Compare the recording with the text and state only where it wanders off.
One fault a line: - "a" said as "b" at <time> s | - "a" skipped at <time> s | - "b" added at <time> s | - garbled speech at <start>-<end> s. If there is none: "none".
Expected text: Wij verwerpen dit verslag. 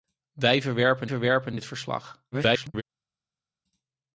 - "verwerpen" added at 1.1 s
- garbled speech at 2.3-2.8 s